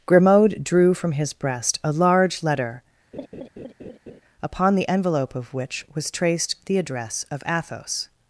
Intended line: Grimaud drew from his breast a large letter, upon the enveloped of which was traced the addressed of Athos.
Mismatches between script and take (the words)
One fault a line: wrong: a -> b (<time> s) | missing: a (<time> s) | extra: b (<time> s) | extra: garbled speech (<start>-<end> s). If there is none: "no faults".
wrong: enveloped -> envelope (4.9 s)
wrong: addressed -> address (6.8 s)